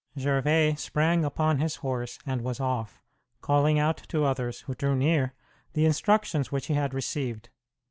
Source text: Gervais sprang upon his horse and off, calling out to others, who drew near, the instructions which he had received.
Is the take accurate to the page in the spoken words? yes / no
no